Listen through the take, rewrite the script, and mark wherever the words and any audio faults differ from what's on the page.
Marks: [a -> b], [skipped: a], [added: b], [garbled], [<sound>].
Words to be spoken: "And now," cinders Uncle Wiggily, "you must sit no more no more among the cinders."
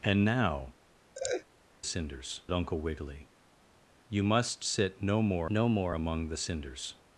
"And now," [laugh] cinders Uncle Wiggily, "you must sit no more no more among the cinders."